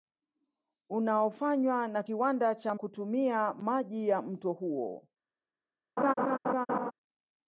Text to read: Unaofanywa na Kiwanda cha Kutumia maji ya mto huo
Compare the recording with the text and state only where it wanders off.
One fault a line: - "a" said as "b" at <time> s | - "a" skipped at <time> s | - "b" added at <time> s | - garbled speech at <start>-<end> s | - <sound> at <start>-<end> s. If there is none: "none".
- laugh at 6.0-6.9 s